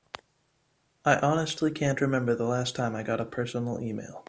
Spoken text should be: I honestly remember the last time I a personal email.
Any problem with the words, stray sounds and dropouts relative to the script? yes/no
yes